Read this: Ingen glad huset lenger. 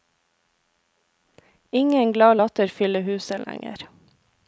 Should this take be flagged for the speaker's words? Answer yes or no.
yes